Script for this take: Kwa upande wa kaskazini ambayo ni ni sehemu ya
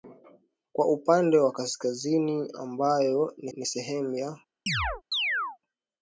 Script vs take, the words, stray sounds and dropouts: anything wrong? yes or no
yes